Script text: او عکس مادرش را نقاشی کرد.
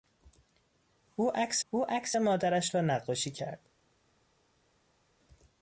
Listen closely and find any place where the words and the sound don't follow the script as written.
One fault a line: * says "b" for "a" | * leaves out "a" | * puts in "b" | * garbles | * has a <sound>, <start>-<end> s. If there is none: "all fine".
* puts in "او عکس"